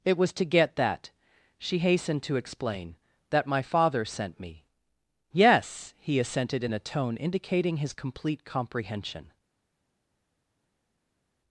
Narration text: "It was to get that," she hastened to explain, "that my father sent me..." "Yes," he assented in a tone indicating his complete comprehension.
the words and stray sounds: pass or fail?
pass